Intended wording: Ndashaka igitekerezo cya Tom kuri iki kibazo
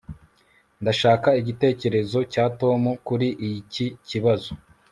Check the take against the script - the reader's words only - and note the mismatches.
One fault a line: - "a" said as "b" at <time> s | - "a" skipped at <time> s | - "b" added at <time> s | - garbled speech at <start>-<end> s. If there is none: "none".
none